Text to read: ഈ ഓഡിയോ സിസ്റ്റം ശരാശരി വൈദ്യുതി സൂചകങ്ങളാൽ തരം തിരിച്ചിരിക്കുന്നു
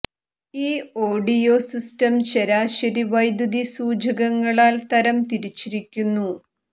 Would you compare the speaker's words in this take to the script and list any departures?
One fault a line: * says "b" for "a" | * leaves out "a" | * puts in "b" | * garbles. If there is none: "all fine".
all fine